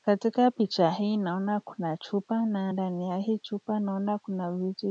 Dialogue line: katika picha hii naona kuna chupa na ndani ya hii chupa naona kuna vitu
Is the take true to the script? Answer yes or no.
yes